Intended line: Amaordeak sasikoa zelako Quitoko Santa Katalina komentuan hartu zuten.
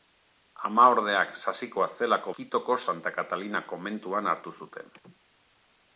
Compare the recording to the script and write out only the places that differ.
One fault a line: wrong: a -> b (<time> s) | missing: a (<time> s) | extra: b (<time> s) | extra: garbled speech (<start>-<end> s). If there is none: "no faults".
no faults